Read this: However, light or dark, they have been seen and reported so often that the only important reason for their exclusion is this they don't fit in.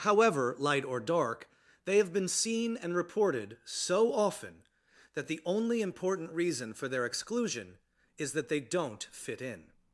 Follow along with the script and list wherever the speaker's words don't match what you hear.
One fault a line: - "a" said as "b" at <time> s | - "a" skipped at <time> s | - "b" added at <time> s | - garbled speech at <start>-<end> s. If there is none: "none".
- "this" said as "that" at 8.3 s